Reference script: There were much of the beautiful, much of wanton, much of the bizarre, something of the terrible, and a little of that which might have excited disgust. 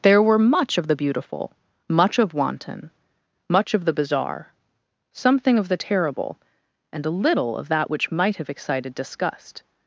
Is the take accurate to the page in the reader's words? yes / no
yes